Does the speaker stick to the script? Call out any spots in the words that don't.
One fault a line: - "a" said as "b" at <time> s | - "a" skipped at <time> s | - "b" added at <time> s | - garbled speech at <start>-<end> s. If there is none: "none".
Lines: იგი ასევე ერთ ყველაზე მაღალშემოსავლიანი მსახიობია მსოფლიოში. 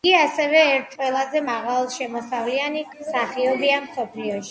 none